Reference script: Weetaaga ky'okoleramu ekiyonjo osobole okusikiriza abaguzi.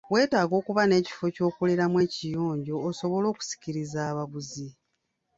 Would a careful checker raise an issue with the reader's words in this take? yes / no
yes